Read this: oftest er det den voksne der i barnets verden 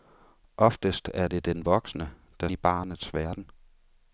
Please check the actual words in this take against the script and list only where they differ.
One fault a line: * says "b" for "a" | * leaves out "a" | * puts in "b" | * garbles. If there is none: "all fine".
all fine